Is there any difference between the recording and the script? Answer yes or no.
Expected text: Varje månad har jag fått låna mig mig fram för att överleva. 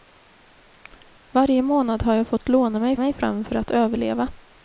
no